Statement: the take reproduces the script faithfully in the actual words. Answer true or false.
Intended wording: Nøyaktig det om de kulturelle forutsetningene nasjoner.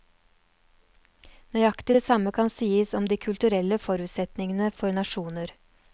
false